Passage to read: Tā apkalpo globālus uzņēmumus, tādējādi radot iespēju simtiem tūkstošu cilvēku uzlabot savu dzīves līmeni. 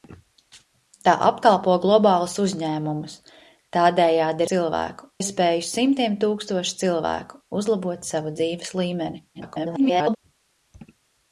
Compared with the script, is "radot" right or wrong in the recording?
wrong